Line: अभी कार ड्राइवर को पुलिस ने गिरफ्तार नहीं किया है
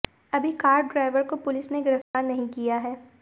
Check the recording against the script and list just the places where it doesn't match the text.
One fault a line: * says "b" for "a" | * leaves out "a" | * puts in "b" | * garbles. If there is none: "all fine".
all fine